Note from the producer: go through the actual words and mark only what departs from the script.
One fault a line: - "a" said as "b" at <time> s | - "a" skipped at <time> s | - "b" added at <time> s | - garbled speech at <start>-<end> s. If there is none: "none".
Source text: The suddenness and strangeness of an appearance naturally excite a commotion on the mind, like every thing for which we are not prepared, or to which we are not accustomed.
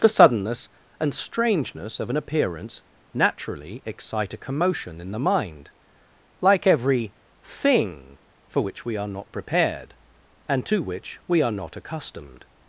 - "on" said as "in" at 5.0 s
- "or" said as "and" at 10.5 s